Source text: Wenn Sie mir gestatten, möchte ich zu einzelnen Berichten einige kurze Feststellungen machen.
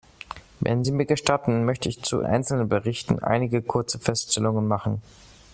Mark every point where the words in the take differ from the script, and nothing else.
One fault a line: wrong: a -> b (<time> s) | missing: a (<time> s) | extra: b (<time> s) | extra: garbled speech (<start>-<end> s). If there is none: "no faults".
no faults